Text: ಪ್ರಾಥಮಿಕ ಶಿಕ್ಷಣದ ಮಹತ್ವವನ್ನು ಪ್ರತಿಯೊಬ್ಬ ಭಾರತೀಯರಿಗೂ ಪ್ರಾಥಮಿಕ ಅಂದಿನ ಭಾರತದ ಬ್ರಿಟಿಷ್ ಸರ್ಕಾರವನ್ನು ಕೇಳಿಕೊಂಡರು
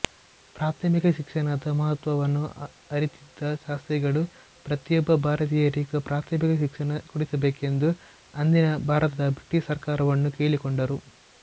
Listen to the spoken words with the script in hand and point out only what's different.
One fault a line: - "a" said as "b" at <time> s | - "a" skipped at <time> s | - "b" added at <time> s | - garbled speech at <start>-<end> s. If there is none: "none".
- "ಅರಿತಿದ್ದ ಶಾಸ್ತ್ರಿಗಳು" added at 2.9 s
- "ಶಿಕ್ಷಣ ಕೊಡಿಸಬೇಕೆಂದು" added at 6.6 s